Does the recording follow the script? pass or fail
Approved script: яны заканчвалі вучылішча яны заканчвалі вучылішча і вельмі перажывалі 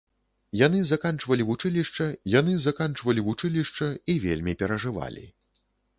pass